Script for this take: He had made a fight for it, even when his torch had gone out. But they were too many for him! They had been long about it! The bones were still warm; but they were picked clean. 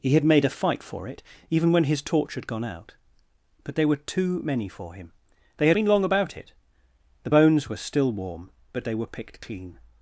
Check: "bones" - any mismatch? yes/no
no